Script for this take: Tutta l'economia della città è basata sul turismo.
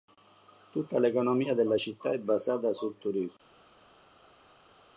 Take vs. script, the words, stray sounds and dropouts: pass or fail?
pass